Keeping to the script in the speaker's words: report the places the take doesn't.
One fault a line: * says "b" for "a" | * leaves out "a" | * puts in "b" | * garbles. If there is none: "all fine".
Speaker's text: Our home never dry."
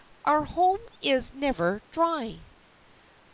* puts in "is"